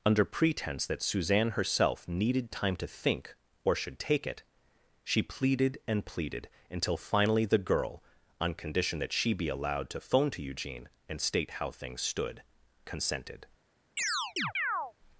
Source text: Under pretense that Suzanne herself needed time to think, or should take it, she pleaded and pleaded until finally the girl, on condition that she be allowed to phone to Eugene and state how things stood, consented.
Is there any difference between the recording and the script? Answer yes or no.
no